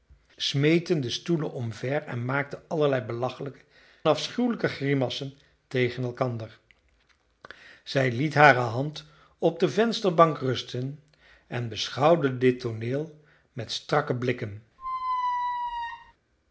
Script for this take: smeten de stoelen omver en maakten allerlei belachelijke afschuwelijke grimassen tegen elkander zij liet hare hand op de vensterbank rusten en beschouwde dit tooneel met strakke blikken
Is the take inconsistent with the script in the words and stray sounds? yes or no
yes